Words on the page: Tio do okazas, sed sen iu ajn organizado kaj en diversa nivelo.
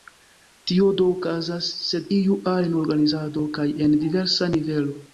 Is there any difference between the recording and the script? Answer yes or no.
yes